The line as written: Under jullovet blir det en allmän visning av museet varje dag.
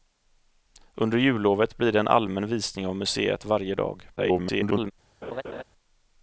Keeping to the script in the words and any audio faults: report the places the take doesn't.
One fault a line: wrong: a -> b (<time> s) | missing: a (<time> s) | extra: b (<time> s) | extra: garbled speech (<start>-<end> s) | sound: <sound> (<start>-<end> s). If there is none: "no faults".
extra: garbled speech (4.2-4.9 s)
sound: laugh (5.2-5.6 s)